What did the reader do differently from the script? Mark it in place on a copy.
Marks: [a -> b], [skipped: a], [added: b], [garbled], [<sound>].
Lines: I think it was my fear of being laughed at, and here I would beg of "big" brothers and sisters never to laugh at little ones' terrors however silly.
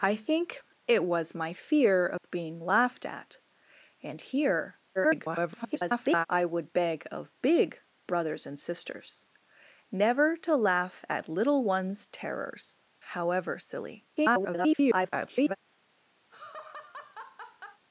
I think it was my fear of [dropout] being laughed at, and here [garbled] I would beg of "big" brothers and sisters never to laugh at little ones' terrors however silly. [garbled] [laugh]